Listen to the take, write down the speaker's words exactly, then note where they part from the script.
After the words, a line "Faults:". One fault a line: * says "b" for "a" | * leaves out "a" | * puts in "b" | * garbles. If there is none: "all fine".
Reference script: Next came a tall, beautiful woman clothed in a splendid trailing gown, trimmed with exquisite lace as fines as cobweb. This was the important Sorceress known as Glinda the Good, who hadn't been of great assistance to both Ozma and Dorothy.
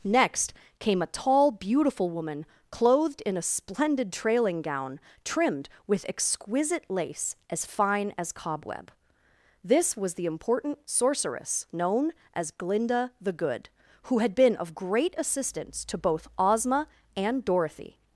Next came a tall, beautiful woman clothed in a splendid trailing gown, trimmed with exquisite lace as fine as cobweb. This was the important Sorceress known as Glinda the Good, who had been of great assistance to both Ozma and Dorothy.
Faults:
* says "fine" for "fines"
* says "had" for "hadn't"